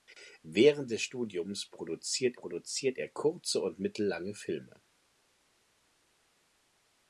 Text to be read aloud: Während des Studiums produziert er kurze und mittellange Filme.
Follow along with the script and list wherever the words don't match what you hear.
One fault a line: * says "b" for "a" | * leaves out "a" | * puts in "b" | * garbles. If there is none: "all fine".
* puts in "produziert"